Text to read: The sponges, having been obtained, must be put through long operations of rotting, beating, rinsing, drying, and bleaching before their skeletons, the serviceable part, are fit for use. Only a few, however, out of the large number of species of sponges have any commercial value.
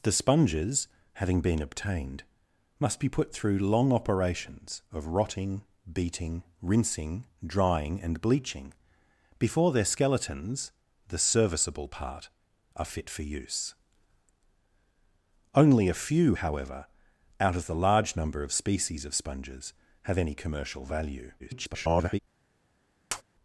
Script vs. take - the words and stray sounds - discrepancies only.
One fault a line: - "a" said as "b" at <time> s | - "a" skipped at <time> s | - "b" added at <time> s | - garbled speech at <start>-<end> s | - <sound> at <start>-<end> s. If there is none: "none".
- garbled speech at 21.4-22.2 s
- tap at 23.1-23.2 s